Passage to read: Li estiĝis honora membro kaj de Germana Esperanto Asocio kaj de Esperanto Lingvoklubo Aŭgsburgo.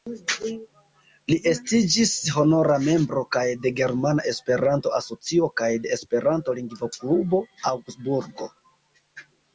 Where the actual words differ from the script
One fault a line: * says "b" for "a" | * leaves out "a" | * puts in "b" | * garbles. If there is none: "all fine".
all fine